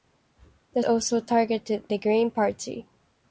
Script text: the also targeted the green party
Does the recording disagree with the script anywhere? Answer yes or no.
no